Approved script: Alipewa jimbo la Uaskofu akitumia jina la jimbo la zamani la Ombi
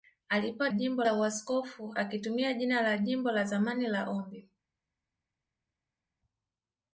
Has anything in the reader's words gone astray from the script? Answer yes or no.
no